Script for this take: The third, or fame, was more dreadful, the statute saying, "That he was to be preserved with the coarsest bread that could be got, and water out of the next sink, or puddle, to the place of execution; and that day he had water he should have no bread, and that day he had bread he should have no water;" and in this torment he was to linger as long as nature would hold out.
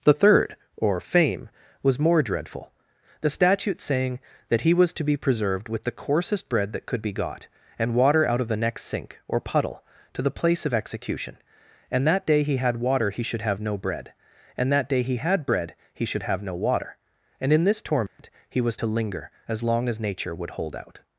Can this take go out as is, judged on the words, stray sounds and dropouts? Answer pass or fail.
fail